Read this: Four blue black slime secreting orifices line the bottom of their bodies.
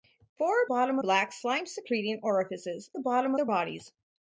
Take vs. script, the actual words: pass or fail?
fail